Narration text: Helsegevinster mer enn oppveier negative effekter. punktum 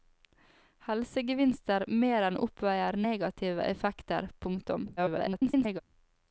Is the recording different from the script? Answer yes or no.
yes